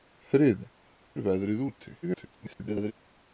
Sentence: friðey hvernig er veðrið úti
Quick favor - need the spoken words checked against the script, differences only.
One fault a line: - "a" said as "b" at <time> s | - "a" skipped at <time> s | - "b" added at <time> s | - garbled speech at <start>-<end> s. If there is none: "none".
- "hvernig" skipped at 0.7 s
- garbled speech at 2.0-2.9 s